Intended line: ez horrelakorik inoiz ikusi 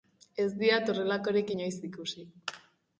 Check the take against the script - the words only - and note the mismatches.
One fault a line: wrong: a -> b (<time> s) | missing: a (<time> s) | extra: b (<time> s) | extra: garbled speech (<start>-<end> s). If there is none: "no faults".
extra: diat (0.6 s)